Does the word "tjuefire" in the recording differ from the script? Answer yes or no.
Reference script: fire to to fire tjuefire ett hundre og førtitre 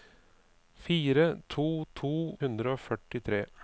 yes